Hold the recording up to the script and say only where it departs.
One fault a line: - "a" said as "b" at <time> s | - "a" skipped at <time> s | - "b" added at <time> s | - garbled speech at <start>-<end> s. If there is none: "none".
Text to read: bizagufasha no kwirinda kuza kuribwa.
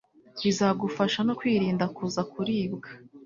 none